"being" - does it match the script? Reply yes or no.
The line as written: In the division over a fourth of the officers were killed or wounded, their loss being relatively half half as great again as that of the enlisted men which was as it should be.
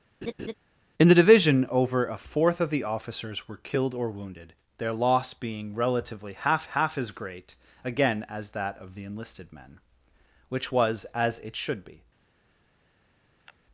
yes